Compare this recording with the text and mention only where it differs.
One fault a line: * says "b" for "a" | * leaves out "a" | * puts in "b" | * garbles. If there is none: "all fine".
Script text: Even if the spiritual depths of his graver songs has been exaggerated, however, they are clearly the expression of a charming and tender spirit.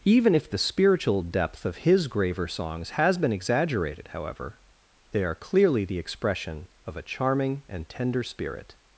* says "depth" for "depths"